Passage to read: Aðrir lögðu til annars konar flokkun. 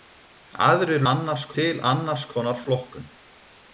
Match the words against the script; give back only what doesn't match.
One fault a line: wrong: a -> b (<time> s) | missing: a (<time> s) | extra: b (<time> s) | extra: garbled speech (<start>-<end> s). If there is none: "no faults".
wrong: lögðu -> annars (1.1 s)